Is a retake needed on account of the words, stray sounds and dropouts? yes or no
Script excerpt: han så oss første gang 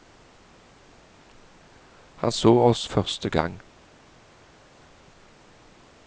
no